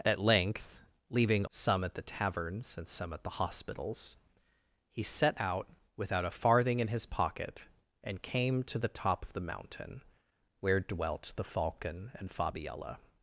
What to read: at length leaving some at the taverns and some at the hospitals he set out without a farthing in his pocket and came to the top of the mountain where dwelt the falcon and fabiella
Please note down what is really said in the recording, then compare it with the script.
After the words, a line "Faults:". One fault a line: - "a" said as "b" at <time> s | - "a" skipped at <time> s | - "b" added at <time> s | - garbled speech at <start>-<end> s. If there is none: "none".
at length leaving some at the taverns and some at the hospitals he set out without a farthing in his pocket and came to the top of the mountain where dwelt the falcon and fabiella
Faults:
none